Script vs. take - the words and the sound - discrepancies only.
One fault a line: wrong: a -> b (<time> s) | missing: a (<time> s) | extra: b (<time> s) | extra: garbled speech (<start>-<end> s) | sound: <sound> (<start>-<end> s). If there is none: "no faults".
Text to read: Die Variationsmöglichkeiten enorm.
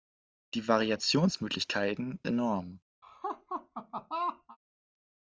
sound: laugh (3.0-4.6 s)